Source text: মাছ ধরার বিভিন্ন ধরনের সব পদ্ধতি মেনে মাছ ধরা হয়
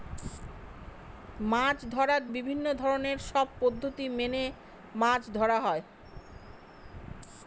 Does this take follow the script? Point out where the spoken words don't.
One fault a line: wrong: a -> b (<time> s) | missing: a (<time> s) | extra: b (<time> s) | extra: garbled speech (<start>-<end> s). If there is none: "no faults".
no faults